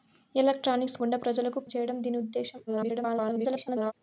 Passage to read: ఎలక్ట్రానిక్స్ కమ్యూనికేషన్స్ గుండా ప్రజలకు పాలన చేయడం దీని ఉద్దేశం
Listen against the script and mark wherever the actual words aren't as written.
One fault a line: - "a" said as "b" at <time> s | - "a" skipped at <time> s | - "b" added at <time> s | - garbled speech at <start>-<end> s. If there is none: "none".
- "కమ్యూనికేషన్స్" skipped at 1.0 s
- "పాలన" skipped at 1.6 s
- garbled speech at 2.7-3.9 s